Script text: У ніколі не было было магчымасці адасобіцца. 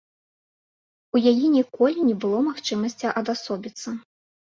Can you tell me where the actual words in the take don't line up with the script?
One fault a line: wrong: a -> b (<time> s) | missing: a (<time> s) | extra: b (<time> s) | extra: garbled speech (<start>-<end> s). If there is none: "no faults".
extra: яе (1.3 s)
missing: было (2.4 s)